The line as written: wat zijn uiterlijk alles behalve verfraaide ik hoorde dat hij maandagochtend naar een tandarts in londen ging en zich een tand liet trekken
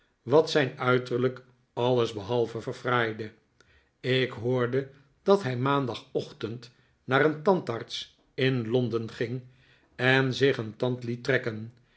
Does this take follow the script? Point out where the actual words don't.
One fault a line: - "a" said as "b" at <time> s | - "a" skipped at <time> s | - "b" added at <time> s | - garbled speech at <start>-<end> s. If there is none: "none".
none